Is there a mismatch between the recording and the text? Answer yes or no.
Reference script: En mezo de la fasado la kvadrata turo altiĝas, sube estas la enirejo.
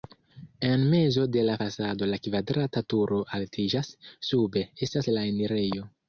no